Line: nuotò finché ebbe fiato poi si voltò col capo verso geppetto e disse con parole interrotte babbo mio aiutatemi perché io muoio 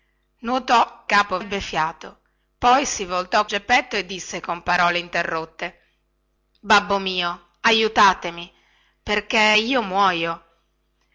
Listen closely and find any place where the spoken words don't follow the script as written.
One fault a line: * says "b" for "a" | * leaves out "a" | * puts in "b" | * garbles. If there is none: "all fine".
* says "capo" for "finché"
* leaves out "col capo verso"